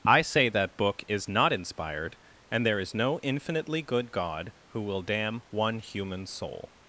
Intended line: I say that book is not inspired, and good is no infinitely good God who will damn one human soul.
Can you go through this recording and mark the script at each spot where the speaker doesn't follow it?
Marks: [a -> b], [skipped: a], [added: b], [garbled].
I say that book is not inspired, and [good -> there] is no infinitely good God who will damn one human soul.